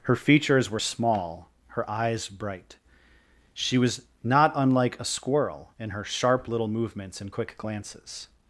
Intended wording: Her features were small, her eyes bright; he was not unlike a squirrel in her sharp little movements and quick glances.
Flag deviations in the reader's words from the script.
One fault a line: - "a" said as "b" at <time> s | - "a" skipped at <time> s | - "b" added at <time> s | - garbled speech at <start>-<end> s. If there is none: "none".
- "he" said as "she" at 3.5 s